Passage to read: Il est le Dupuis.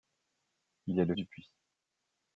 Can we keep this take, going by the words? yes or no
yes